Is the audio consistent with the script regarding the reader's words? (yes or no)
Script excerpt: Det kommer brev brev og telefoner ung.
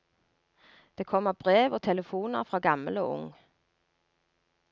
no